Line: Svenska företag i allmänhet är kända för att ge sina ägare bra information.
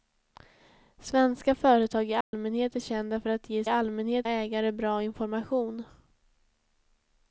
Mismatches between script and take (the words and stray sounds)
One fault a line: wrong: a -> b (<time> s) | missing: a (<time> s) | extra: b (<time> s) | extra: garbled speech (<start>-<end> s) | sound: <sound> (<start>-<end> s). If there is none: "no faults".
sound: dropout (2.2-2.3 s)
wrong: sina -> allmänhet (3.7 s)